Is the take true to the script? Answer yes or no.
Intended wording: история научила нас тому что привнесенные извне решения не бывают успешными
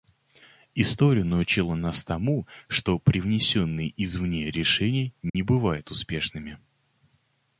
yes